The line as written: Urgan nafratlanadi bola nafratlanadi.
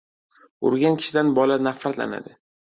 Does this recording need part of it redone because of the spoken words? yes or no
yes